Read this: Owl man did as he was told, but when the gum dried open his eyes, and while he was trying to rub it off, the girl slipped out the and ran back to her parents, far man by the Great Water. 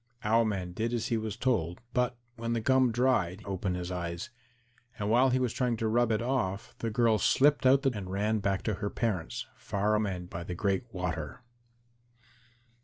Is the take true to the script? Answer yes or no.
yes